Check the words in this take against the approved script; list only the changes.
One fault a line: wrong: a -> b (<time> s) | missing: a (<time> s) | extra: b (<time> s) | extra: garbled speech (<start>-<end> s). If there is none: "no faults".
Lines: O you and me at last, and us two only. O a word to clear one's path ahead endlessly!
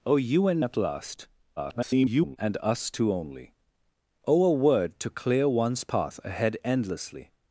missing: me (0.7 s)
extra: garbled speech (1.6-2.4 s)